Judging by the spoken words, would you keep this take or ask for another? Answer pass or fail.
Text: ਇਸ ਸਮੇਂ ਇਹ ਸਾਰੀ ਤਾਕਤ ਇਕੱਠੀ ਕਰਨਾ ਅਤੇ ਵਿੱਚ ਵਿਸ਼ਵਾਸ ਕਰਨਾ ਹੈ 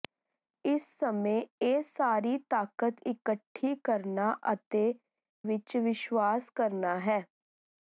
pass